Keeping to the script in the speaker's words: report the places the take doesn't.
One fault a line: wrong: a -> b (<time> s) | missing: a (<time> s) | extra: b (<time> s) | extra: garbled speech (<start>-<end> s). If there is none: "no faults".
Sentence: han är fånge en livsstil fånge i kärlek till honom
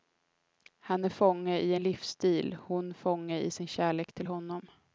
extra: i (1.6 s)
extra: hon (2.6 s)
extra: sin (3.5 s)